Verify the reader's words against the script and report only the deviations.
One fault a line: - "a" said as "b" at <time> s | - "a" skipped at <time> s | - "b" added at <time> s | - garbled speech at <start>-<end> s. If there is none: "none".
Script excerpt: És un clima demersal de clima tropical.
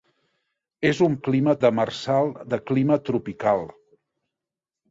none